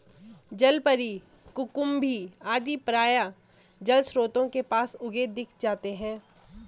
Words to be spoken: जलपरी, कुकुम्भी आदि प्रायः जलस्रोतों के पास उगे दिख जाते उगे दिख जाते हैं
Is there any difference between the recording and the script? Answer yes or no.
yes